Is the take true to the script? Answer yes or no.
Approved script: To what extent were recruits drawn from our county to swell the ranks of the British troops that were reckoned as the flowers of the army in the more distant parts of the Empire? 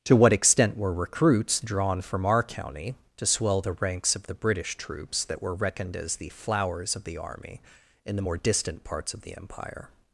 yes